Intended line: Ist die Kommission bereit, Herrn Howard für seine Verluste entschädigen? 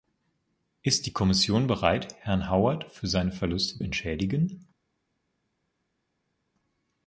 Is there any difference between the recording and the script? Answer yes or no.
no